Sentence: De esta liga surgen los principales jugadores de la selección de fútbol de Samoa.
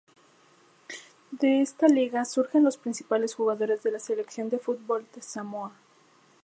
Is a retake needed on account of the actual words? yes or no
no